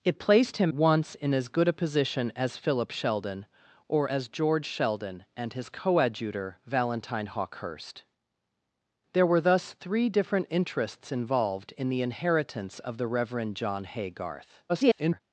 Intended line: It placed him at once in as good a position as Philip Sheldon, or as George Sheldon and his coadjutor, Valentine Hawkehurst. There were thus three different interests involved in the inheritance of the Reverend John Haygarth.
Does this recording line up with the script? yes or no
no